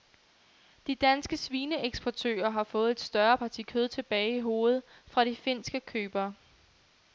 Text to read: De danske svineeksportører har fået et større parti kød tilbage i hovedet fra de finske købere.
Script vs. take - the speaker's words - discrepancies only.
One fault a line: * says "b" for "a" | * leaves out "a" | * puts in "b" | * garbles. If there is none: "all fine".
all fine